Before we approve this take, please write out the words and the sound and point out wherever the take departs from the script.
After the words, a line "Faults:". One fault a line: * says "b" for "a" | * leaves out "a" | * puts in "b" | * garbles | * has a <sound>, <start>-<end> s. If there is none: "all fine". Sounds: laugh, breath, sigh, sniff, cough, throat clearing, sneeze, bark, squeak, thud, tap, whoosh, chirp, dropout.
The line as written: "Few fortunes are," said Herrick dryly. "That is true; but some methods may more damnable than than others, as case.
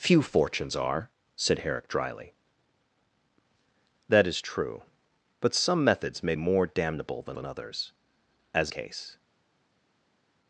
"Few fortunes are," said Herrick dryly. "That is true; but some methods may more damnable than than others, as case.
Faults:
all fine